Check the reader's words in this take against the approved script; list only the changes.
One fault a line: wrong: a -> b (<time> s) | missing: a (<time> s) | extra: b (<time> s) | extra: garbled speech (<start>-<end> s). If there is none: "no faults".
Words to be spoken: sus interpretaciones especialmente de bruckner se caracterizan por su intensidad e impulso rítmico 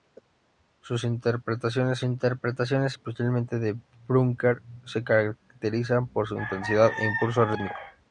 extra: interpretaciones (2.0 s)